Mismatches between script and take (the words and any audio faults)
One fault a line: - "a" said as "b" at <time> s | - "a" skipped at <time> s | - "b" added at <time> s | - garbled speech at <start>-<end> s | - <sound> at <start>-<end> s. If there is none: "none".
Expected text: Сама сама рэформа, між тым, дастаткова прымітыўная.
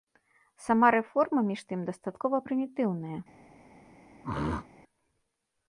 - "сама" skipped at 0.9 s
- throat clearing at 4.2-4.7 s